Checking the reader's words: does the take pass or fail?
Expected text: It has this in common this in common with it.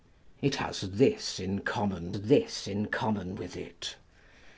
pass